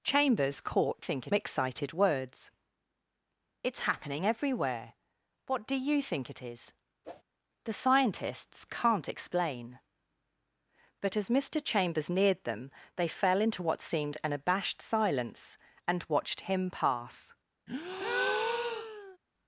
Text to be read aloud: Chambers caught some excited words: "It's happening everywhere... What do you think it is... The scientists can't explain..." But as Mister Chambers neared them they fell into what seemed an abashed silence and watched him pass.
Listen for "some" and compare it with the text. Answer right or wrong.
wrong